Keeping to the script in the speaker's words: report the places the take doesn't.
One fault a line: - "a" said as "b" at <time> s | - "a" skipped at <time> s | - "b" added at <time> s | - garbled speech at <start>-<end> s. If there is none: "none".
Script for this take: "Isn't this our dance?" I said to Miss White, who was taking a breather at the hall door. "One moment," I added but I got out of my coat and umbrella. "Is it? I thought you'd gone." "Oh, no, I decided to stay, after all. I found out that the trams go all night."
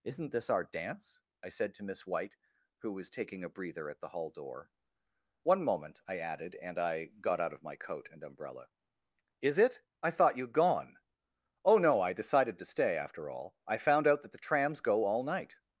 - "but" said as "and" at 6.5 s